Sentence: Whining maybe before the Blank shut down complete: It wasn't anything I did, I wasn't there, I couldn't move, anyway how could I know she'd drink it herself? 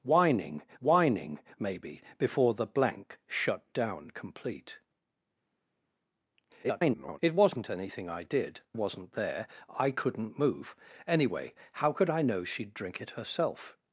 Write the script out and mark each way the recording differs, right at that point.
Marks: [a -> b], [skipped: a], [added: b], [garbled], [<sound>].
Whining [added: whining] maybe before the Blank shut down complete: [garbled] It wasn't anything I did, [skipped: I] wasn't there, I couldn't move, anyway how could I know she'd drink it herself?